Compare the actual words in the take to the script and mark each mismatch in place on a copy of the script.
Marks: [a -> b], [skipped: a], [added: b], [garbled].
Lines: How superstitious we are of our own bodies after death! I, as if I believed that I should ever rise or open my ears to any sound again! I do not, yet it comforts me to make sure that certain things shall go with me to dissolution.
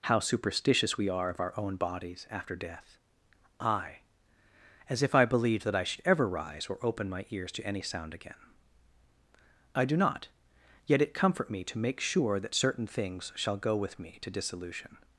How superstitious we are of our own bodies after death! I, as if I believed that I should ever rise or open my ears to any sound again! I do not, yet it [comforts -> comfort] me to make sure that certain things shall go with me to dissolution.